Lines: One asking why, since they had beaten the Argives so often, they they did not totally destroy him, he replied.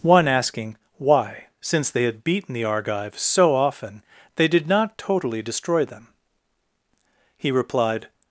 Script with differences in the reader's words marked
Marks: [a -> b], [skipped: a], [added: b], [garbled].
One asking why, since they had beaten the Argives so often, they [skipped: they] did not totally destroy [him, -> them] he replied.